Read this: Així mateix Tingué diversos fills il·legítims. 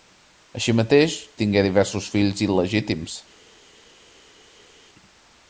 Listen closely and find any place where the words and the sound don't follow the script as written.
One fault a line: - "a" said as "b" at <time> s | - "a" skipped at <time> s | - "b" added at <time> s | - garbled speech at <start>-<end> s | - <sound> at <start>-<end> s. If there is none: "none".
none